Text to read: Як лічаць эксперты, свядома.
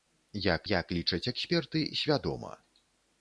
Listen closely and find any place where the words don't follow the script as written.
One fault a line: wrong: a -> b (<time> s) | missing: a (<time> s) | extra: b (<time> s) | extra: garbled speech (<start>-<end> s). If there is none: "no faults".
extra: як (0.7 s)